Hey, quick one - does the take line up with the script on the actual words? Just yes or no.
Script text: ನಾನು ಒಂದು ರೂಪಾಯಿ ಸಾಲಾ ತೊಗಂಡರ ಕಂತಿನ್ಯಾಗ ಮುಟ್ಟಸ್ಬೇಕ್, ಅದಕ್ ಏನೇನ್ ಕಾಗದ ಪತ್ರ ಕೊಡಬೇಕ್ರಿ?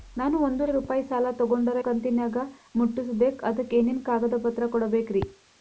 yes